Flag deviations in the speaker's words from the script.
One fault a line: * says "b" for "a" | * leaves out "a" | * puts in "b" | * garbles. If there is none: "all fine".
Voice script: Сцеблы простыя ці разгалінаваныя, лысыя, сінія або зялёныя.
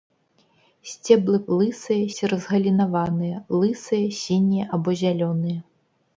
* says "лысыя" for "простыя"